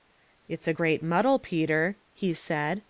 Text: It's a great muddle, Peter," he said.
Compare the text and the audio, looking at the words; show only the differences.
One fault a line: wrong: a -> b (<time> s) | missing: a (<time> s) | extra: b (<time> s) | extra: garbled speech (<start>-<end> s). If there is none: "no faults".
no faults